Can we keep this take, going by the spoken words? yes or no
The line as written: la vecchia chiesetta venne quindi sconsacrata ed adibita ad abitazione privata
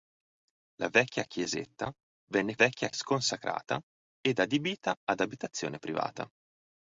no